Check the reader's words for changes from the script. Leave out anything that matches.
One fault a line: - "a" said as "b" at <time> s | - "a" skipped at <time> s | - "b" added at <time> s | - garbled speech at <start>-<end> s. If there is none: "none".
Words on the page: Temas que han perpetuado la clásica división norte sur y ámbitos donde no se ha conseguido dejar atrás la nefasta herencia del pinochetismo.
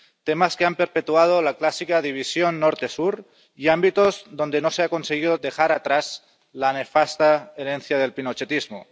none